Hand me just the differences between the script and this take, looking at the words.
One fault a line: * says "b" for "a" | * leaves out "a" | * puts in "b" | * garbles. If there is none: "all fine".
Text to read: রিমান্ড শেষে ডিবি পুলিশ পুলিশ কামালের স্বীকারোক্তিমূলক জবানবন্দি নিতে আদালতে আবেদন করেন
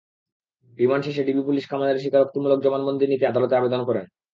* leaves out "পুলিশ"